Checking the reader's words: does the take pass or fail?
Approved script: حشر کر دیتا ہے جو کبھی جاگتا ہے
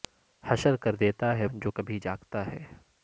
pass